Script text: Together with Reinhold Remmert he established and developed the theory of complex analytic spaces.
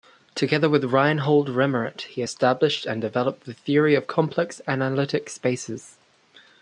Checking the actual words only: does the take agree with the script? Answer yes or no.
yes